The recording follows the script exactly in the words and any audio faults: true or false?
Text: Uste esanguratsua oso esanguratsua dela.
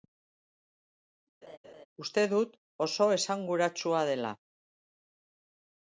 false